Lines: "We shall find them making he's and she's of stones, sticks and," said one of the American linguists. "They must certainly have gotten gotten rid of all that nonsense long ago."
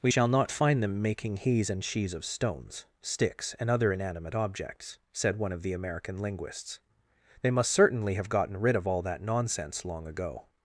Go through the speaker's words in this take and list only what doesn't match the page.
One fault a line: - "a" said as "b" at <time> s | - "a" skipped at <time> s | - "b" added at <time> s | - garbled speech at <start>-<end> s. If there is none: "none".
- "not" added at 0.3 s
- "other inanimate objects" added at 3.7 s
- "gotten" skipped at 8.6 s